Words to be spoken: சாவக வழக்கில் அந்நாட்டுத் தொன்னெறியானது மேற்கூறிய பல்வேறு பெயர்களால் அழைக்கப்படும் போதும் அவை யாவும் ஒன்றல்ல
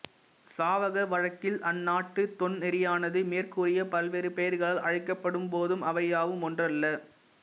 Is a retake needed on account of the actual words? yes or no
no